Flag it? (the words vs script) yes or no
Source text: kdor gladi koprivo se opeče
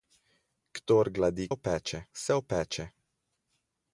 yes